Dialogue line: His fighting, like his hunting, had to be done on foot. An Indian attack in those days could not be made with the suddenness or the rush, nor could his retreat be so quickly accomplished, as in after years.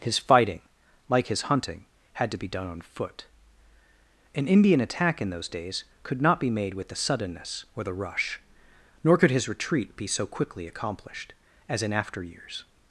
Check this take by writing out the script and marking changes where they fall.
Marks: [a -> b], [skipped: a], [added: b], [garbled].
His fighting, like his hunting, had to be done on foot. An Indian attack in those days could not be made with the suddenness or the rush, nor could his retreat be so quickly accomplished, as in after years.